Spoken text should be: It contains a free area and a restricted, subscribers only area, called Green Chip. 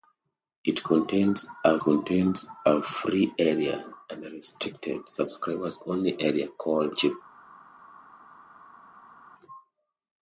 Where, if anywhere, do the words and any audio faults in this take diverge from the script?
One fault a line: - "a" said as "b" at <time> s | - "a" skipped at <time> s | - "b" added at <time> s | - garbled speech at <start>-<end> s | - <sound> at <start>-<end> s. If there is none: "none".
- "contains a" added at 1.8 s
- "Green" skipped at 6.9 s